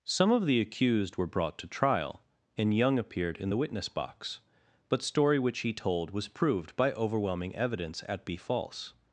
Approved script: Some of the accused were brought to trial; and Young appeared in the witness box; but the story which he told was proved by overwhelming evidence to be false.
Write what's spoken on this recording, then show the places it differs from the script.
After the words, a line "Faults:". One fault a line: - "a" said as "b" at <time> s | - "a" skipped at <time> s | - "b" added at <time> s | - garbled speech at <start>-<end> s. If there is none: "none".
Some of the accused were brought to trial; and Young appeared in the witness box; but story which he told was proved by overwhelming evidence at be false.
Faults:
- "the" skipped at 5.0 s
- "to" said as "at" at 8.1 s